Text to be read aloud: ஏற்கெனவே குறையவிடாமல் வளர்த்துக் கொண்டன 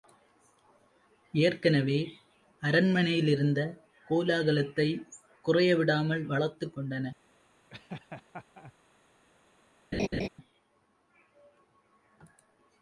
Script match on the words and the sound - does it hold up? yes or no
no